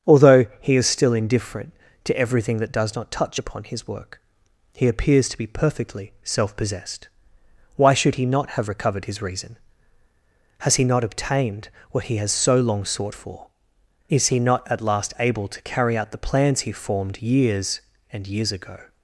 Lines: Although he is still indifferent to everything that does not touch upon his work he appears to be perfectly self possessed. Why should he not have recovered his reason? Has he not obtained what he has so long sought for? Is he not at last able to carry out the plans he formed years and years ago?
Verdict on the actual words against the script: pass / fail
pass